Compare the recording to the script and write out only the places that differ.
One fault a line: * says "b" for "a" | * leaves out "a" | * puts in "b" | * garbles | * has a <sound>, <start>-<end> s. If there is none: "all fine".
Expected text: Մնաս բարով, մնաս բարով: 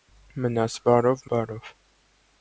* leaves out "մնաս"